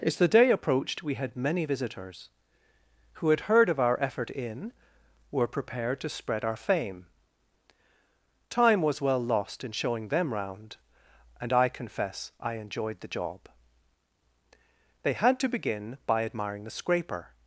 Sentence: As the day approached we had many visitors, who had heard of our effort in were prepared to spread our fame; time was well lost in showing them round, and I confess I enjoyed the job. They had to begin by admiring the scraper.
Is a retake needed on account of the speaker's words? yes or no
no